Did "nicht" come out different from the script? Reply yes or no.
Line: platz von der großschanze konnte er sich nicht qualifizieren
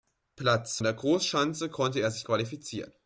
yes